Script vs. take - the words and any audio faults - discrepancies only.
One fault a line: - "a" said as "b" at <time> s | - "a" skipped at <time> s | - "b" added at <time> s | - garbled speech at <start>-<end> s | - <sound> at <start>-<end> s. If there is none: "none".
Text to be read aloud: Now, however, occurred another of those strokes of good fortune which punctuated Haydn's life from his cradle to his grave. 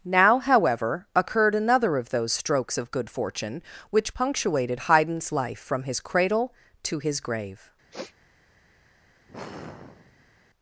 - sniff at 7.9-8.1 s
- sigh at 9.3-10.3 s